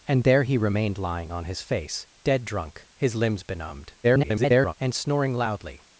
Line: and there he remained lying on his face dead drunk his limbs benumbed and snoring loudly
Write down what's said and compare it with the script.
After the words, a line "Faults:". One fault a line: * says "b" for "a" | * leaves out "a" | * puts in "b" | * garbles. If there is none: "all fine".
and there he remained lying on his face dead drunk his limbs benumbed [garbled] and snoring loudly
Faults:
* garbles